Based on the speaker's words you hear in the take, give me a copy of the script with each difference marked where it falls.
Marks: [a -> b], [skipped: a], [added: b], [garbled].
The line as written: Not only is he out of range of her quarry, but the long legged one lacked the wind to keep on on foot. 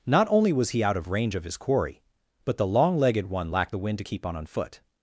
Not only [is -> was] he out of range of [her -> his] quarry, but the long legged one lacked the wind to keep on on foot.